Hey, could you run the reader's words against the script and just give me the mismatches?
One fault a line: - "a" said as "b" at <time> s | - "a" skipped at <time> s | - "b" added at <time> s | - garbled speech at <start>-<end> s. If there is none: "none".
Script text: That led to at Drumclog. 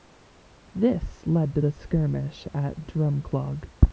- "That" said as "This" at 0.7 s
- "the skirmish" added at 1.6 s